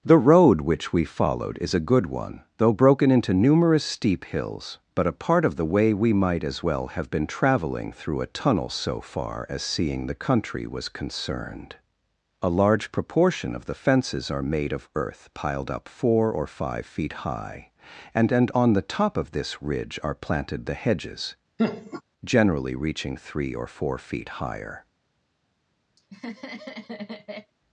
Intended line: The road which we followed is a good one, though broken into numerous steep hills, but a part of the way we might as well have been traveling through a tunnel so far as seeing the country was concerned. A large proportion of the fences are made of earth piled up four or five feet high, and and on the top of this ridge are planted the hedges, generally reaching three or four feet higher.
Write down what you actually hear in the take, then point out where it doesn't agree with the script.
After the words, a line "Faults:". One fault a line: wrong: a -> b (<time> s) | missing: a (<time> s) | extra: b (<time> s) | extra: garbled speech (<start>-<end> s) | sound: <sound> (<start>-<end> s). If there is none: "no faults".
The road which we followed is a good one, though broken into numerous steep hills, but a part of the way we might as well have been traveling through a tunnel so far as seeing the country was concerned. A large proportion of the fences are made of earth piled up four or five feet high, and and on the top of this ridge are planted the hedges, generally reaching three or four feet higher.
Faults:
sound: laugh (21.6-22.0 s)
sound: laugh (26.0-27.5 s)